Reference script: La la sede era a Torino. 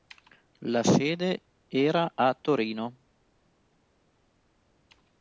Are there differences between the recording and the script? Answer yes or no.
yes